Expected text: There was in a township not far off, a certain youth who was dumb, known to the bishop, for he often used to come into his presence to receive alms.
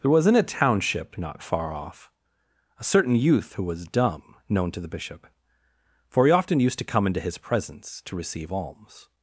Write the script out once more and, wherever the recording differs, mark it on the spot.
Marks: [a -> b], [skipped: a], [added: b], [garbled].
There was in a township not far off, a certain youth who was dumb, known to the bishop, for he often used to come into his presence to receive alms.